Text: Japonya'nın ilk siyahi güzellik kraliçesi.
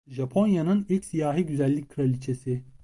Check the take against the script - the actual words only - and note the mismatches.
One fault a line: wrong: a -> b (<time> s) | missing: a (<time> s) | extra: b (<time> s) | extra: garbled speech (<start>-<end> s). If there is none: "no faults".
no faults